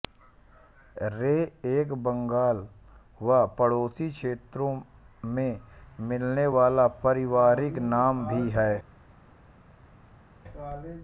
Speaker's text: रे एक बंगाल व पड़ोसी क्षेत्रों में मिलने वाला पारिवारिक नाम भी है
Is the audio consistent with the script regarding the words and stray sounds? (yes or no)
yes